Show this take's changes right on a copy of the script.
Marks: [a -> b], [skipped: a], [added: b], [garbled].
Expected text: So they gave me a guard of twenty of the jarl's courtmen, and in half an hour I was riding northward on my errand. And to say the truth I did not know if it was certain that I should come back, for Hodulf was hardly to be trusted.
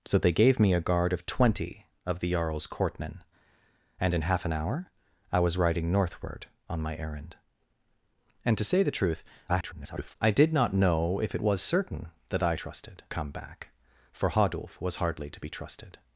So they gave me a guard of twenty of the jarl's courtmen, and in half an hour I was riding northward on my errand. And to say the truth [garbled] I did not know if it was certain that I [should -> trusted] come back, for Hodulf was hardly to be trusted.